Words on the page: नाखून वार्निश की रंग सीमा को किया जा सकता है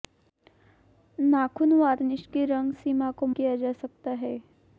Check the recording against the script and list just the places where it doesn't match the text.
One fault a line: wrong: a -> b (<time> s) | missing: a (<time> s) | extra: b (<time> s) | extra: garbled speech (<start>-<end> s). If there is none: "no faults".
no faults